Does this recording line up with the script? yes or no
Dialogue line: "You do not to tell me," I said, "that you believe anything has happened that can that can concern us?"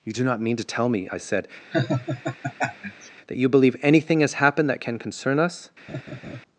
no